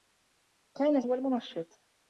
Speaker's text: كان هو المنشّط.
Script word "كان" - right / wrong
right